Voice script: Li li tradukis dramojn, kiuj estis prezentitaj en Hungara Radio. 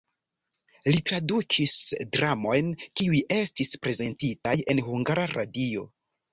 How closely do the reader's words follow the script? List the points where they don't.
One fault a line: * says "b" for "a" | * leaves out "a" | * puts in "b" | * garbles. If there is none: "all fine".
* leaves out "li"